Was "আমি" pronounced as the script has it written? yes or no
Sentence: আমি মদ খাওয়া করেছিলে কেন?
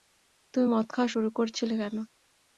no